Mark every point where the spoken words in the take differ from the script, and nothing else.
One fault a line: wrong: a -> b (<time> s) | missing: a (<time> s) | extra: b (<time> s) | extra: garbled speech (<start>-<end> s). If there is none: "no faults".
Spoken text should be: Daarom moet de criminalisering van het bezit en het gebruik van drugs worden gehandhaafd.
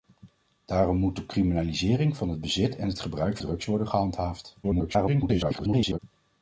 missing: van (3.4 s)
extra: garbled speech (4.6-6.0 s)